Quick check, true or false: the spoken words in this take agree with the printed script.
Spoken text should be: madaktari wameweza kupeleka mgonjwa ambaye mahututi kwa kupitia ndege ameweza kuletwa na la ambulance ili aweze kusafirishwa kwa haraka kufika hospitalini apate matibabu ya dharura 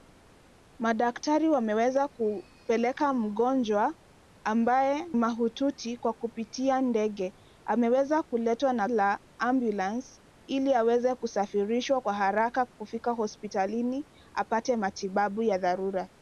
true